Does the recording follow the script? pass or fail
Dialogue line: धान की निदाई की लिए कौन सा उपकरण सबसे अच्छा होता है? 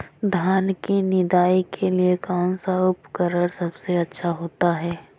fail